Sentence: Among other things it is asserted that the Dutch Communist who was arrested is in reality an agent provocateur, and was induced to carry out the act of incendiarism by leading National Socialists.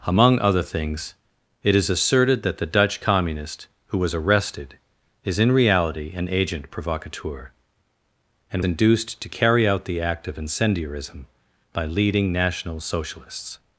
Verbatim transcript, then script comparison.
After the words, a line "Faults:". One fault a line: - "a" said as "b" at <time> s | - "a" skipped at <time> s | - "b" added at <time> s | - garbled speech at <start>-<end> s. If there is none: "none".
Among other things it is asserted that the Dutch Communist who was arrested is in reality an agent provocateur, and induced to carry out the act of incendiarism by leading National Socialists.
Faults:
- "was" skipped at 8.6 s